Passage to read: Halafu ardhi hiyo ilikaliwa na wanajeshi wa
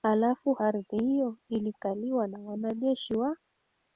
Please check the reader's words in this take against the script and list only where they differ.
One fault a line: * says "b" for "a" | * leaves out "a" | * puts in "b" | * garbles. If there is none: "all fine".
all fine